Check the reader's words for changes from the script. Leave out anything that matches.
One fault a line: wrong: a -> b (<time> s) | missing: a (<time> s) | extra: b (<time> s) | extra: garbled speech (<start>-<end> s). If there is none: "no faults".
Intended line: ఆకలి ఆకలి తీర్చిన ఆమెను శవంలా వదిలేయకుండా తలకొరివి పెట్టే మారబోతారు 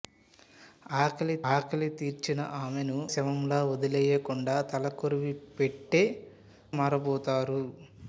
no faults